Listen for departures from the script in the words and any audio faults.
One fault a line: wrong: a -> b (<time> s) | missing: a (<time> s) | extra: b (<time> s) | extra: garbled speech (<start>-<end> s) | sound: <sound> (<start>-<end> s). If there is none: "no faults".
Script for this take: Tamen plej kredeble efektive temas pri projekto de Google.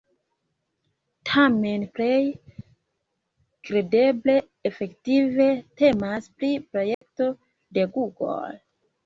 sound: dropout (6.9-7.0 s)